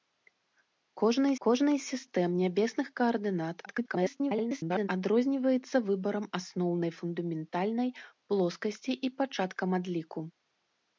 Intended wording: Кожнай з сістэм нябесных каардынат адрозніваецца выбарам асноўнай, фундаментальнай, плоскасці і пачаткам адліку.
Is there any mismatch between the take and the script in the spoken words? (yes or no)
yes